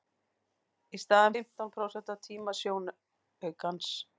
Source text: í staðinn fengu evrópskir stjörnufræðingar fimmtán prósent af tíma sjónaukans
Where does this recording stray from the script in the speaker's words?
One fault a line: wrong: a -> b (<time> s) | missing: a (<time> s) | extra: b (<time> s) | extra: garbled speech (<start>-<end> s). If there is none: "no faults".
missing: fengu evrópskir stjörnufræðingar (1.4 s)